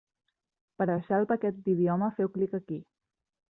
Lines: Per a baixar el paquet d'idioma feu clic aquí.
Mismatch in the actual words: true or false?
false